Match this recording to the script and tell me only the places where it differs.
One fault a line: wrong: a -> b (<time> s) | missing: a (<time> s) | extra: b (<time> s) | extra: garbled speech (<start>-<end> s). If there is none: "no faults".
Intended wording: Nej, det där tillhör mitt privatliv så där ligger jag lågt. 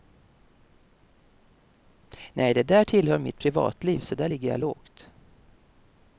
no faults